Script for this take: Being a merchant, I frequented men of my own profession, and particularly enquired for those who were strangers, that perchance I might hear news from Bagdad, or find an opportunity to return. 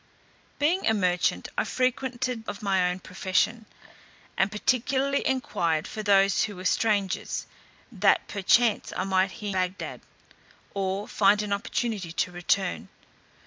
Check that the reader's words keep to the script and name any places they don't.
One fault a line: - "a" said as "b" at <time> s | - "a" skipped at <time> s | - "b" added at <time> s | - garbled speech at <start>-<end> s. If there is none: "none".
- "men" skipped at 2.5 s
- "news from" skipped at 9.5 s